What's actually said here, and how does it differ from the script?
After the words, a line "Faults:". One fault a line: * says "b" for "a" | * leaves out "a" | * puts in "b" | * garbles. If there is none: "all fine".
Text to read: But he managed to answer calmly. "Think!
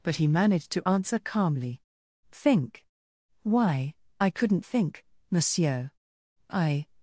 But he managed to answer calmly. "Think! Why, I couldn't think, Monsieur. I
Faults:
* puts in "Why I couldn't think Monsieur I"